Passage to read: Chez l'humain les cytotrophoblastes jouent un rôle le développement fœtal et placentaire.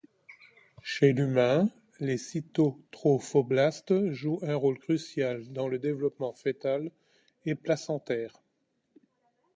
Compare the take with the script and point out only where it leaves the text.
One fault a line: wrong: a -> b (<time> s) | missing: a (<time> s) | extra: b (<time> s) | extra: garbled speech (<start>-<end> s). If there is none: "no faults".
extra: crucial dans (4.8 s)